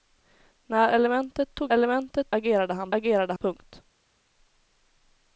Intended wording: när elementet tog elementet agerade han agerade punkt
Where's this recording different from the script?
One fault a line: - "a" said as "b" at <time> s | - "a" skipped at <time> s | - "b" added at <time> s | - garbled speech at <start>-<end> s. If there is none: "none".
none